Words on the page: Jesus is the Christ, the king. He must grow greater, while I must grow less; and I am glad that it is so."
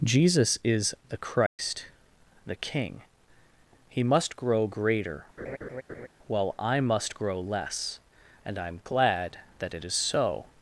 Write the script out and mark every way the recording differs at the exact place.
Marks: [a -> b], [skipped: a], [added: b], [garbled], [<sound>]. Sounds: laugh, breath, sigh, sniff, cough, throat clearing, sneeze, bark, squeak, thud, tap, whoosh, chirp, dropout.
Jesus is the Christ, [dropout] the king. He must grow greater, [laugh] while I must grow less; and I am glad that it is so."